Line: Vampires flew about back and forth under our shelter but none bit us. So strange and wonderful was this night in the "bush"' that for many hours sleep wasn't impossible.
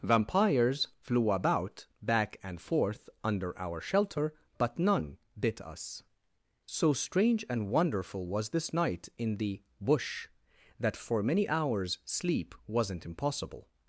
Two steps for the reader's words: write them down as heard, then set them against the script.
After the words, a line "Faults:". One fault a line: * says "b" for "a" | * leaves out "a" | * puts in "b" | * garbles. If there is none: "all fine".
Vampires flew about back and forth under our shelter but none bit us. So strange and wonderful was this night in the "bush"' that for many hours sleep wasn't impossible.
Faults:
all fine